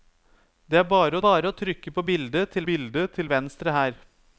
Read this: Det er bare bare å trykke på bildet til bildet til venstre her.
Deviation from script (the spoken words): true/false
false